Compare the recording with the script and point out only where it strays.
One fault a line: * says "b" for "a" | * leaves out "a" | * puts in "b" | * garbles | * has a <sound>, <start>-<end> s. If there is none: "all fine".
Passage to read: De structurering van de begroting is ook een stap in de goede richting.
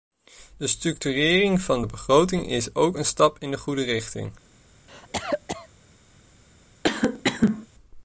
* has a cough, 4.9-5.7 s
* has a cough, 6.8-7.7 s